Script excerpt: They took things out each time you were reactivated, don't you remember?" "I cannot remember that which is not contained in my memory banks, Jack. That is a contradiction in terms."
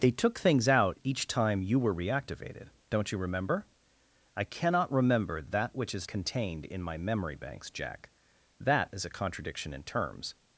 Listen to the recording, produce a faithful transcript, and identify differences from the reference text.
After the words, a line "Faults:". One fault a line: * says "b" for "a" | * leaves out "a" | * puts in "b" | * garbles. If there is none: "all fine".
They took things out each time you were reactivated, don't you remember?" "I cannot remember that which is contained in my memory banks, Jack. That is a contradiction in terms."
Faults:
* leaves out "not"